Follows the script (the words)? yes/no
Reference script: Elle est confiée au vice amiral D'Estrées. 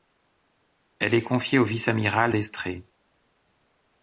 yes